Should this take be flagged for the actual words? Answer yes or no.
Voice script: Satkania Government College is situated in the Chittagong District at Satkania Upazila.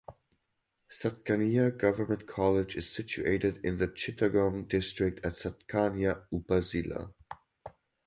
no